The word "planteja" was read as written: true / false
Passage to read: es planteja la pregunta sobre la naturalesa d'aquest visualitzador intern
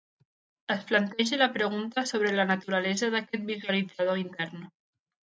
true